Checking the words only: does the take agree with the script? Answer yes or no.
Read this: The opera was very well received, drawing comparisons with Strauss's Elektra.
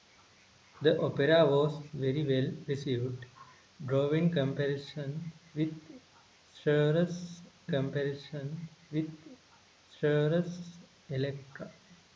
no